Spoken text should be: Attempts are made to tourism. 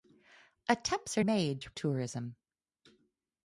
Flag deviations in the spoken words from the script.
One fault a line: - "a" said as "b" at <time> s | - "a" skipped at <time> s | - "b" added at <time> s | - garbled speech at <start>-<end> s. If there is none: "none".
none